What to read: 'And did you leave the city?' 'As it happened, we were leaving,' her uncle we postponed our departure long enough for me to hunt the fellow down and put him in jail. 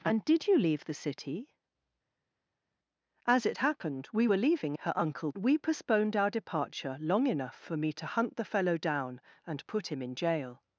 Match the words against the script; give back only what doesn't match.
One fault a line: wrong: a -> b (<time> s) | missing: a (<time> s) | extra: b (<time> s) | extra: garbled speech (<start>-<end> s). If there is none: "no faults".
no faults